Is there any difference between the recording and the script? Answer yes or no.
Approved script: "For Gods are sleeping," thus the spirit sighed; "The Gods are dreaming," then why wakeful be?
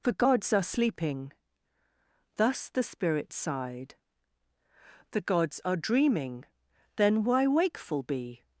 no